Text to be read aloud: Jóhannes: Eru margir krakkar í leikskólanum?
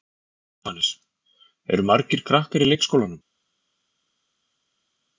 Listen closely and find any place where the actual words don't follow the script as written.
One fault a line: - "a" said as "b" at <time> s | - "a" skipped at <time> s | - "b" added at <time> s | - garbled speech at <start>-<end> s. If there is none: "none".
none